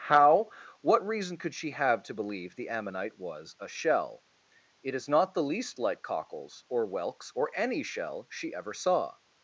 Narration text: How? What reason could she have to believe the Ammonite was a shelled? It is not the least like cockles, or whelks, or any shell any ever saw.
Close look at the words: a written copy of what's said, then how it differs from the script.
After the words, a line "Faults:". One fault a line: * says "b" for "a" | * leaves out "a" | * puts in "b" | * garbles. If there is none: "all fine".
How? What reason could she have to believe the Ammonite was a shell? It is not the least like cockles, or whelks, or any shell she ever saw.
Faults:
* says "shell" for "shelled"
* says "she" for "any"